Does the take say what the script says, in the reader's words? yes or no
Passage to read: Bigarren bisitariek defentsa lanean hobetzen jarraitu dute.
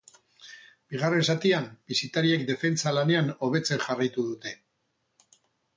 no